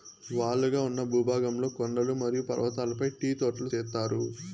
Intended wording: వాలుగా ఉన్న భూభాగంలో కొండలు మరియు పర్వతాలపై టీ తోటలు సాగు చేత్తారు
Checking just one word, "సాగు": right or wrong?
wrong